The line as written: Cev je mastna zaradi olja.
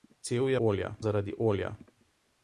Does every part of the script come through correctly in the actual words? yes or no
no